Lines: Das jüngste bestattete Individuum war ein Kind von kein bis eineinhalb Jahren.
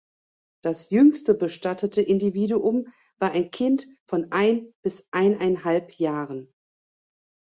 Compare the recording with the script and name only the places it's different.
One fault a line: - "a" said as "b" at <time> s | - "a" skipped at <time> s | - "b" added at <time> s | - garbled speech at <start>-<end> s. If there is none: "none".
- "kein" said as "ein" at 4.3 s